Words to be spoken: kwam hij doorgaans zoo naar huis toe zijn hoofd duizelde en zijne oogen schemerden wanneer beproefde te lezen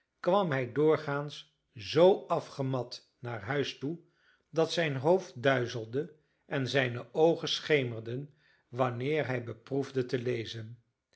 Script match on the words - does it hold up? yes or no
no